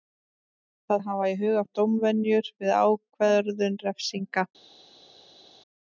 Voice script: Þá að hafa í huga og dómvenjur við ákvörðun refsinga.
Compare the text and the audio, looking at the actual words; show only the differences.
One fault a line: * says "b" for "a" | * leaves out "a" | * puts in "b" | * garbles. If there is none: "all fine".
all fine